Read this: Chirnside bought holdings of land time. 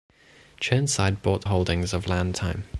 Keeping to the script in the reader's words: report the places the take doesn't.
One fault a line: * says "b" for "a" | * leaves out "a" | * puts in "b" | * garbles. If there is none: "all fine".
all fine